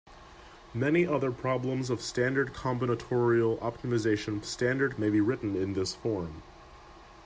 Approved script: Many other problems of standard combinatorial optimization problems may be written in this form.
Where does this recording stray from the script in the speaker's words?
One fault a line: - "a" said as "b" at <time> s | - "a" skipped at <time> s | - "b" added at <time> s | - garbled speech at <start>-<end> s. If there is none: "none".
- "problems" said as "standard" at 4.4 s